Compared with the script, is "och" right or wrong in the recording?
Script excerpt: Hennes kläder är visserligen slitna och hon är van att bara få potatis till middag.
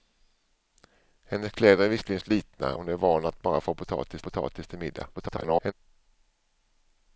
wrong